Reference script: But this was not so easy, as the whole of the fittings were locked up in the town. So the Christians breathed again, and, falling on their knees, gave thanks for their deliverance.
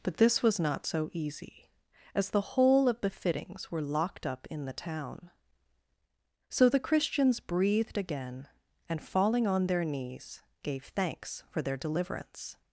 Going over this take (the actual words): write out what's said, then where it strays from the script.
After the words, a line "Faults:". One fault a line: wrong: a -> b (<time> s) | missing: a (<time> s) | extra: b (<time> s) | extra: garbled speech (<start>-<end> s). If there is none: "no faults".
But this was not so easy, as the whole of the fittings were locked up in the town. So the Christians breathed again, and, falling on their knees, gave thanks for their deliverance.
Faults:
no faults